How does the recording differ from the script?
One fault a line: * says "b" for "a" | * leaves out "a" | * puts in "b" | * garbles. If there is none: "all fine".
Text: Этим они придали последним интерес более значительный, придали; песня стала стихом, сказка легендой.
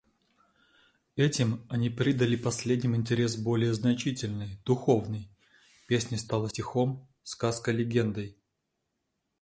* says "духовный" for "придали"